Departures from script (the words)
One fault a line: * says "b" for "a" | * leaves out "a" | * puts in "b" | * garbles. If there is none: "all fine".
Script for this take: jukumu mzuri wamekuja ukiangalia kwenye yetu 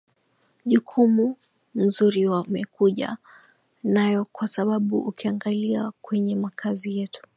* puts in "nayo kwa sababu"
* puts in "makazi"